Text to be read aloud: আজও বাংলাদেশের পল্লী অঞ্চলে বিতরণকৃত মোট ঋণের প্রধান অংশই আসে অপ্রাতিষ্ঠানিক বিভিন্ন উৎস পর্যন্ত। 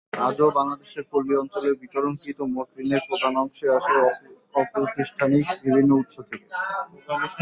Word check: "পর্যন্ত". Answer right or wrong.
wrong